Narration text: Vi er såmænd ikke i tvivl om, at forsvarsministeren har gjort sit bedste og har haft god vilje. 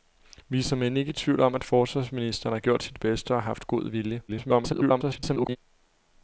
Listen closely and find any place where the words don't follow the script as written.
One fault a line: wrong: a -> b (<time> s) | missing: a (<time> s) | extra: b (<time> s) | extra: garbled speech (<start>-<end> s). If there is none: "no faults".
extra: garbled speech (4.3-5.6 s)